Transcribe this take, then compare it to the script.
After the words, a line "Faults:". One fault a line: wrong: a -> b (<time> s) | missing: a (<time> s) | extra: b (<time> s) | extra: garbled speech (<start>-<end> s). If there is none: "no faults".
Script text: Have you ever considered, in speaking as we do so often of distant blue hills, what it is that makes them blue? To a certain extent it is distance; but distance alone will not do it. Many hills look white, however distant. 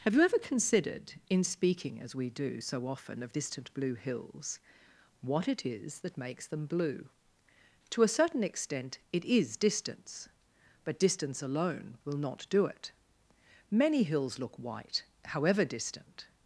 Have you ever considered, in speaking as we do so often of distant blue hills, what it is that makes them blue? To a certain extent it is distance; but distance alone will not do it. Many hills look white, however distant.
Faults:
no faults